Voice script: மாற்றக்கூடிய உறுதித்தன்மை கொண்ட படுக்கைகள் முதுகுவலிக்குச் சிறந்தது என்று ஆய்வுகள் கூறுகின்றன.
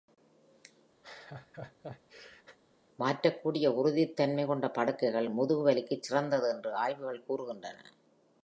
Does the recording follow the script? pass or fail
pass